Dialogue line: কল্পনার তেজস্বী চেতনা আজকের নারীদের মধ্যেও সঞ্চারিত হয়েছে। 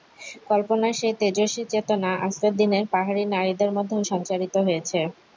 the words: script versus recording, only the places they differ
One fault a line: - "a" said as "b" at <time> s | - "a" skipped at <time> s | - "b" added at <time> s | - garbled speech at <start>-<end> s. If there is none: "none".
- "সেই" added at 0.9 s
- "দিনের পাহাড়ি" added at 2.6 s